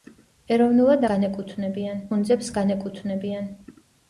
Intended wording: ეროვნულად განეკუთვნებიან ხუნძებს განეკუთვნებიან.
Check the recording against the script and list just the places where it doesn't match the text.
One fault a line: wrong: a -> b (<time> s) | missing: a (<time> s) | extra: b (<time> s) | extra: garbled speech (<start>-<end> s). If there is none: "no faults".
no faults